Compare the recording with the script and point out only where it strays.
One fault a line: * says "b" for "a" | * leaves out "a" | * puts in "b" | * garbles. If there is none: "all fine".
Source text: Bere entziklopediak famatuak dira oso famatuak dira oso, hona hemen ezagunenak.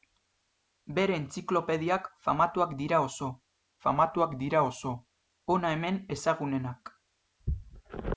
all fine